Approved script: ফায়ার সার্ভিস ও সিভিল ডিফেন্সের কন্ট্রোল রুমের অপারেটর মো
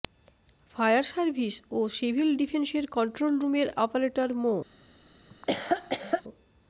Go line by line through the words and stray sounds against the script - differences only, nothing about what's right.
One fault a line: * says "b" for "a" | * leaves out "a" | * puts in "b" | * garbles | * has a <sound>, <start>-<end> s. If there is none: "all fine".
* has a laugh, 5.3-6.2 s